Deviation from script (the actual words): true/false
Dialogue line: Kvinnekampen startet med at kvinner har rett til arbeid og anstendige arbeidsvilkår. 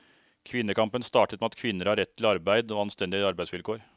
false